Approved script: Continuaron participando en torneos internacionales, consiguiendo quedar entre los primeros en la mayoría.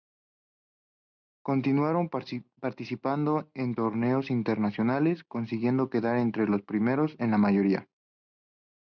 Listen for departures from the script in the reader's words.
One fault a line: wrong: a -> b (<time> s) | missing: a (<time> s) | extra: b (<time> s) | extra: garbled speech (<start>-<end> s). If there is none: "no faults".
no faults